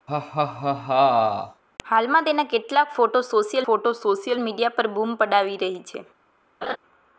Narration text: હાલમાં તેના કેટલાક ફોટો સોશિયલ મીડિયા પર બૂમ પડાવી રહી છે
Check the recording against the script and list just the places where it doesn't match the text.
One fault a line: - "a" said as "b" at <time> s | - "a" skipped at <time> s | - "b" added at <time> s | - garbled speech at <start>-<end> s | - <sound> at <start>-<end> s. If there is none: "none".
- laugh at 0.1-1.6 s
- "ફોટો સોશિયલ" added at 3.6 s
- laugh at 6.6-6.8 s